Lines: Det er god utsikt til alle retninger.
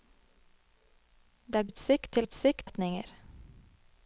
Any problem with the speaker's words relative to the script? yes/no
yes